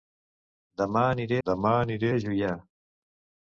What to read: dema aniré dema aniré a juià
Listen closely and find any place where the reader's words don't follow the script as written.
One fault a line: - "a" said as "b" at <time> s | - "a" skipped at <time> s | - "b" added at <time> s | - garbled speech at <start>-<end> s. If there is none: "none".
none